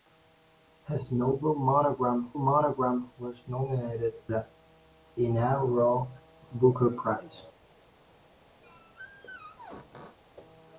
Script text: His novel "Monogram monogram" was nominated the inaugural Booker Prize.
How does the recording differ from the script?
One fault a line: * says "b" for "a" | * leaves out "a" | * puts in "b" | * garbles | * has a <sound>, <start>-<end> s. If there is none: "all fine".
* has a squeak, 8.6-10.2 s